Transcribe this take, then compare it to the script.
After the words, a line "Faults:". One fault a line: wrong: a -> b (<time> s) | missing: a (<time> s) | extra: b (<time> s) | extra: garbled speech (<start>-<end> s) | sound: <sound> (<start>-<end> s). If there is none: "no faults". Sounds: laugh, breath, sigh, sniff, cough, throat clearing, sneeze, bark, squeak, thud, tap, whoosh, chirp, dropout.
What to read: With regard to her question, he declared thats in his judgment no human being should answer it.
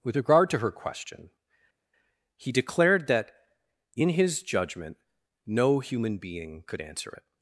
With regard to her question, he declared that in his judgment no human being could answer it.
Faults:
wrong: thats -> that (3.1 s)
wrong: should -> could (6.7 s)